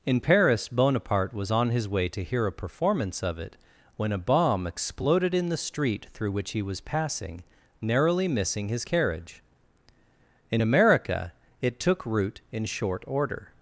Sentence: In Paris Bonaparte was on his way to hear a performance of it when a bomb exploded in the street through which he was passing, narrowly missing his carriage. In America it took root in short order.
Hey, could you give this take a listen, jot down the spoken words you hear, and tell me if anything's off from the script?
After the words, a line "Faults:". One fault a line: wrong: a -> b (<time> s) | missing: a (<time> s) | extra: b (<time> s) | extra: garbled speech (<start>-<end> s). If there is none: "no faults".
In Paris Bonaparte was on his way to hear a performance of it when a bomb exploded in the street through which he was passing, narrowly missing his carriage. In America it took root in short order.
Faults:
no faults